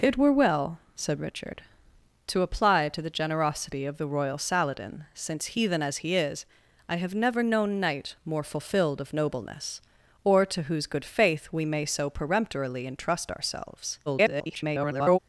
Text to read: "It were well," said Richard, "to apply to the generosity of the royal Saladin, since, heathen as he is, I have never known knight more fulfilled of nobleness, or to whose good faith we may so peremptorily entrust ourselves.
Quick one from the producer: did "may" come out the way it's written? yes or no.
yes